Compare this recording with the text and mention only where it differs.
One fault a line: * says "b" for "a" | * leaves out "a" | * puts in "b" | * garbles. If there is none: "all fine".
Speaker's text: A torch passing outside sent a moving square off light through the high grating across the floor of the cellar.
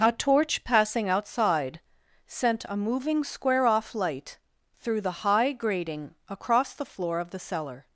all fine